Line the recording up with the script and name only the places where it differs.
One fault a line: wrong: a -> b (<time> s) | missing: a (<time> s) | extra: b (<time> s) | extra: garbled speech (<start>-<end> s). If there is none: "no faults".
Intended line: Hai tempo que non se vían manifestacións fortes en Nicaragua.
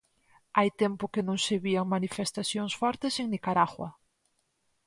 no faults